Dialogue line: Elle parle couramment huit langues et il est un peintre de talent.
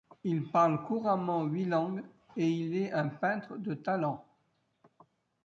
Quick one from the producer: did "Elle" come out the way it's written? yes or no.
no